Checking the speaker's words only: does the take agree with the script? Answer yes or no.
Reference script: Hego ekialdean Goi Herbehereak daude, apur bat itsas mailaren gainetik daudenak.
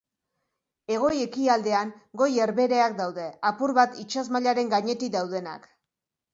yes